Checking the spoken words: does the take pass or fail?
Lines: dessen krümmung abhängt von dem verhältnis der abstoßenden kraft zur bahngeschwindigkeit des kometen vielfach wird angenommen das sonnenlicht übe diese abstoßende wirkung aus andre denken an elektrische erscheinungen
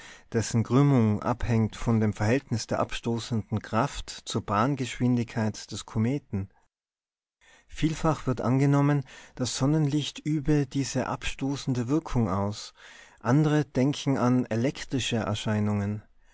pass